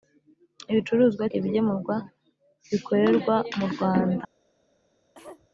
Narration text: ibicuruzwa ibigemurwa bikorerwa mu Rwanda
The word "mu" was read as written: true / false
true